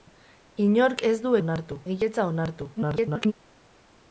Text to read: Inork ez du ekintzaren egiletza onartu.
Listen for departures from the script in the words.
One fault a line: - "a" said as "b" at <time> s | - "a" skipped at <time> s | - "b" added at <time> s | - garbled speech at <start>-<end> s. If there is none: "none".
- "ekintzaren" said as "onartu" at 1.4 s
- garbled speech at 2.8-3.3 s